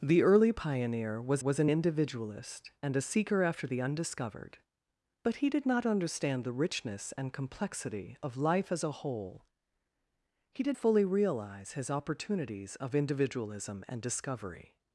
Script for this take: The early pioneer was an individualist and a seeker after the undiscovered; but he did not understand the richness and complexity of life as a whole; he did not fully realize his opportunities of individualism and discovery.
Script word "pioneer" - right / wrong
right